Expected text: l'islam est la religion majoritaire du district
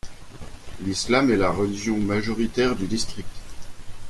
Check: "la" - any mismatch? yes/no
no